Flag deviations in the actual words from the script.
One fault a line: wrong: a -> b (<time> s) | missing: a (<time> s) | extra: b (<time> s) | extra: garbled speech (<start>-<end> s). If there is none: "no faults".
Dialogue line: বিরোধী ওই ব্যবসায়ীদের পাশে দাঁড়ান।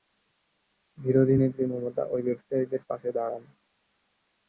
extra: নেত্রী মমতা (1.4 s)